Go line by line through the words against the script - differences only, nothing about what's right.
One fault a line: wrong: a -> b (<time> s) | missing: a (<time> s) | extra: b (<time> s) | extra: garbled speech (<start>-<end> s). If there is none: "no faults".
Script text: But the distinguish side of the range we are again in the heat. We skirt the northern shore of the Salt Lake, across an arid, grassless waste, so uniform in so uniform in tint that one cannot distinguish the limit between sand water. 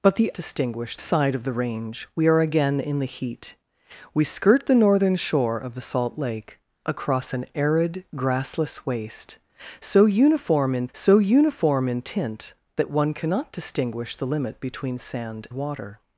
no faults